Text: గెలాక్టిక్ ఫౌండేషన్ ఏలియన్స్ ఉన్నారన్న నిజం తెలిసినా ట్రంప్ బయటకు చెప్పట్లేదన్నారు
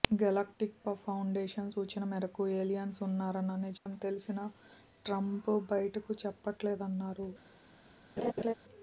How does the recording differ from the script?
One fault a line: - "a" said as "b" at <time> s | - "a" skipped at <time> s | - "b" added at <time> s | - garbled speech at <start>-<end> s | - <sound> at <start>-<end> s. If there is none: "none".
- "సూచన మేరకు" added at 1.7 s
- dropout at 3.8-3.9 s
- laugh at 8.2-8.5 s